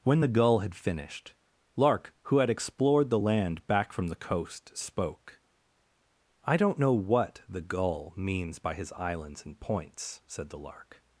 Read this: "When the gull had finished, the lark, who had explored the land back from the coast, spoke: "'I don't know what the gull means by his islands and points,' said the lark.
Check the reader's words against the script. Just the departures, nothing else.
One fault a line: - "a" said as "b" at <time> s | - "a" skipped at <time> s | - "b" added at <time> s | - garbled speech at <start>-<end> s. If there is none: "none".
- "the" skipped at 1.3 s